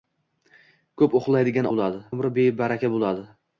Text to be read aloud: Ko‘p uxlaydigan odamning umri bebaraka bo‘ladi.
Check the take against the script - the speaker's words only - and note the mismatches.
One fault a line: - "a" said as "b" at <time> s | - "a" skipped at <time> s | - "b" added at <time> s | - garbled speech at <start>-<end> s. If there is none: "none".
- "odamning" said as "bo‘ladi" at 1.7 s